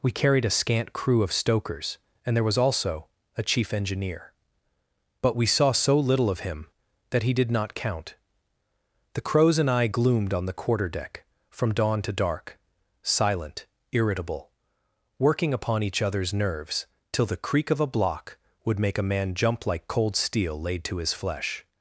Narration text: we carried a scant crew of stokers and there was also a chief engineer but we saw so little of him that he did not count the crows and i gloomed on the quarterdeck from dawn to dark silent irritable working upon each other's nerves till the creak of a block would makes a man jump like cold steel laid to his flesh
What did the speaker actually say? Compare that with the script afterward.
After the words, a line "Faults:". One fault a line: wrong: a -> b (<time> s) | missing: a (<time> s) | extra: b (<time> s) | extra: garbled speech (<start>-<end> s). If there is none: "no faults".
we carried a scant crew of stokers and there was also a chief engineer but we saw so little of him that he did not count the crows and i gloomed on the quarterdeck from dawn to dark silent irritable working upon each other's nerves till the creak of a block would make a man jump like cold steel laid to his flesh
Faults:
wrong: makes -> make (18.8 s)